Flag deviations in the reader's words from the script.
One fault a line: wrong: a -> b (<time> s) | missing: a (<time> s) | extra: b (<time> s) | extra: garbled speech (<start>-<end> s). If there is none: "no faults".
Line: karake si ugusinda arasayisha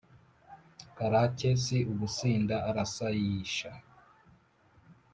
no faults